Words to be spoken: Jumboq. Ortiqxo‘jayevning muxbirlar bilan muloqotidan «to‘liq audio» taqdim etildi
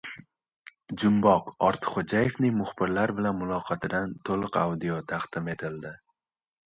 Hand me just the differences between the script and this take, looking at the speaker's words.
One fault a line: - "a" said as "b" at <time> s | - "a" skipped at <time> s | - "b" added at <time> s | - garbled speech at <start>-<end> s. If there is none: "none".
none